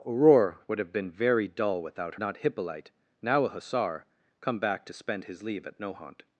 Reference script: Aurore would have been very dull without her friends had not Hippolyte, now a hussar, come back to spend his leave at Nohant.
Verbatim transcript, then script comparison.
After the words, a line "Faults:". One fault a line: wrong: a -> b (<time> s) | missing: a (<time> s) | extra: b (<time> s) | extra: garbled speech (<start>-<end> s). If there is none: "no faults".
Aurore would have been very dull without not Hippolyte, now a hussar, come back to spend his leave at Nohant.
Faults:
missing: her friends had (2.1 s)